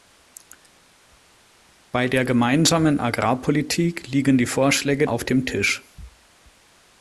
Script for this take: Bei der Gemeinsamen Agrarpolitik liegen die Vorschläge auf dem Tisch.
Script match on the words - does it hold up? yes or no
yes